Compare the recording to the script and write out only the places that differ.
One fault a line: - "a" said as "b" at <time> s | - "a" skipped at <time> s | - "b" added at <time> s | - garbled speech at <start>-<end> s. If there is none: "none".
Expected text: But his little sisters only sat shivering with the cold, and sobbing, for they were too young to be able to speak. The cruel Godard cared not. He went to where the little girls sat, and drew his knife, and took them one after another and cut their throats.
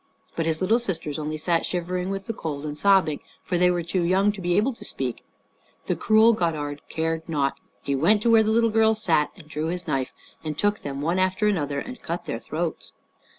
none